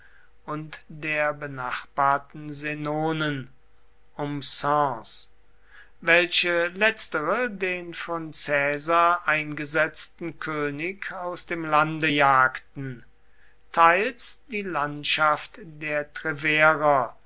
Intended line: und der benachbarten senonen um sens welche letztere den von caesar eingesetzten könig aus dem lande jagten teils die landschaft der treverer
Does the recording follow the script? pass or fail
pass